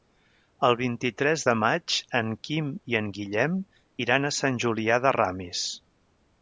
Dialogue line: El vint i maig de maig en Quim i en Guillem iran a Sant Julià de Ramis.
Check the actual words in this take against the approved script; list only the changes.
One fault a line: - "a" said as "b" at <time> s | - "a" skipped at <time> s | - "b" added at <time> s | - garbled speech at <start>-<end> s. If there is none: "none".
- "maig" said as "tres" at 1.2 s